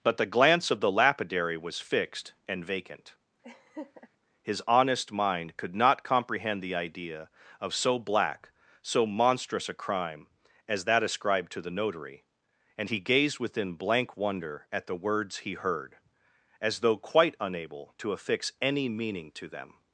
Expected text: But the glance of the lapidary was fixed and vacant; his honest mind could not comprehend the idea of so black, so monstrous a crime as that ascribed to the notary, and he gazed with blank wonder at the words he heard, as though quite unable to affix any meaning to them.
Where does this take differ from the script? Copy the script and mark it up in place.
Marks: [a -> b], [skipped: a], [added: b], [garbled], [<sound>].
But the glance of the lapidary was fixed and vacant; [laugh] his honest mind could not comprehend the idea of so black, so monstrous a crime as that ascribed to the notary, and he gazed [with -> within] blank wonder at the words he heard, as though quite unable to affix any meaning to them.